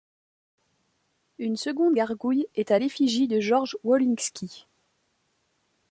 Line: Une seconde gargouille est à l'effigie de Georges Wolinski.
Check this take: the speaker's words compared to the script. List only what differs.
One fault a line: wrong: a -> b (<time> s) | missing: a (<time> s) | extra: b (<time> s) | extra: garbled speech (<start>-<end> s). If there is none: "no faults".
no faults